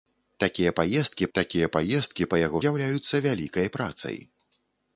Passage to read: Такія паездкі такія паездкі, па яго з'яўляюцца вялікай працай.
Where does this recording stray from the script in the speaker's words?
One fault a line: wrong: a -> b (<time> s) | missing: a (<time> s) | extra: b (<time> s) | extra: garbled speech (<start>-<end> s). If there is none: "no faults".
no faults